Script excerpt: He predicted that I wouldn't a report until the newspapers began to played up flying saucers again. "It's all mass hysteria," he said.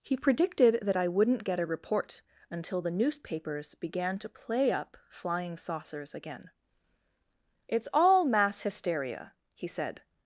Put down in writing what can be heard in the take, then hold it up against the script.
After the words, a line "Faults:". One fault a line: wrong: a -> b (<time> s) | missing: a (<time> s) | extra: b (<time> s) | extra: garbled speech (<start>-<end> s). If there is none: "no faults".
He predicted that I wouldn't get a report until the newspapers began to play up flying saucers again. "It's all mass hysteria," he said.
Faults:
extra: get (1.4 s)
wrong: played -> play (4.3 s)